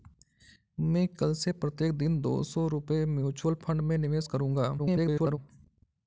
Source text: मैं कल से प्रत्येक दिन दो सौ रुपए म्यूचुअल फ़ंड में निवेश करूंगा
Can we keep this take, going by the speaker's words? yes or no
no